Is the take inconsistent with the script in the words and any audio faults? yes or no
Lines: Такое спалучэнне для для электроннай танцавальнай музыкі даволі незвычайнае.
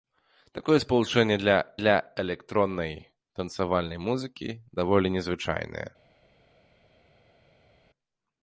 no